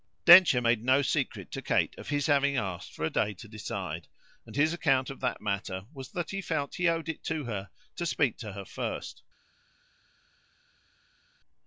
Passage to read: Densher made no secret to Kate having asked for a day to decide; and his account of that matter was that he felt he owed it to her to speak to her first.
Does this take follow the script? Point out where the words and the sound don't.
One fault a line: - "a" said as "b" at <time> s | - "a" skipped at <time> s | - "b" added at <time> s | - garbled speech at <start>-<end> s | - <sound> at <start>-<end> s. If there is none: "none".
- "of his" added at 2.0 s